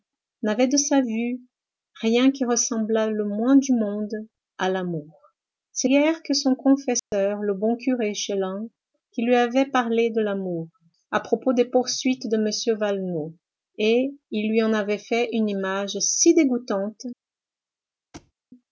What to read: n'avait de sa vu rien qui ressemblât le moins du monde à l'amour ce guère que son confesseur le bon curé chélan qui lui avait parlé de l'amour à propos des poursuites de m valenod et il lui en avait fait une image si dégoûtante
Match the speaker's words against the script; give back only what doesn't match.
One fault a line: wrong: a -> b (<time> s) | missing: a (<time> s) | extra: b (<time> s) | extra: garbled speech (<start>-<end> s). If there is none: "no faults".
no faults